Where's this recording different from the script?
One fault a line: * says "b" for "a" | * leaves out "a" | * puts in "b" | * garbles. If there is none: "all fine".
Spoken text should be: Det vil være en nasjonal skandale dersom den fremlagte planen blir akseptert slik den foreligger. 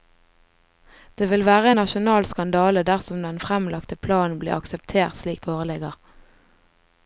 * leaves out "den"